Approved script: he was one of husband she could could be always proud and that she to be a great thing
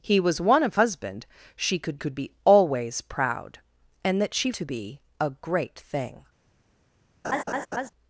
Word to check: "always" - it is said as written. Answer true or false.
true